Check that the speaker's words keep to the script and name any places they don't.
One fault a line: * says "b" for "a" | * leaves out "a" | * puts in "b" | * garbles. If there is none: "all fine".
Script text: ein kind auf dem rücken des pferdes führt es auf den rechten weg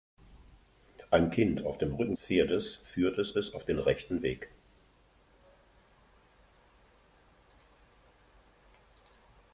* leaves out "des"
* puts in "es"